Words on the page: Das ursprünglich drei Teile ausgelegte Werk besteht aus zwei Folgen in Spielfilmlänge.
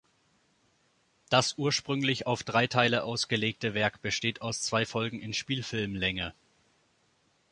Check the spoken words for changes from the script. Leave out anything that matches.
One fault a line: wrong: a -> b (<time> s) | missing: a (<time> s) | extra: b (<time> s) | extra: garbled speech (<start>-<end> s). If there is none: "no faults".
extra: auf (2.2 s)